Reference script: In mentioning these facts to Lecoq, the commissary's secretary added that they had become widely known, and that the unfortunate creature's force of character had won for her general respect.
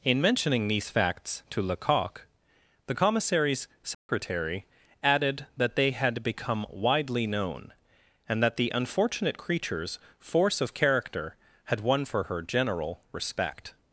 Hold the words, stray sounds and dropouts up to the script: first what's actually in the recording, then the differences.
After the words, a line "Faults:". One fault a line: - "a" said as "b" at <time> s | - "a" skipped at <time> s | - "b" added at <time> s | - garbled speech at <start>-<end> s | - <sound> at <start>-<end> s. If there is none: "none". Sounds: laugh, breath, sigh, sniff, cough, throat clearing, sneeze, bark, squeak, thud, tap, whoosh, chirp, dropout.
In mentioning these facts to Lecoq, the commissary's secretary added that they had become widely known, and that the unfortunate creature's force of character had won for her general respect.
Faults:
- dropout at 3.9-4.1 s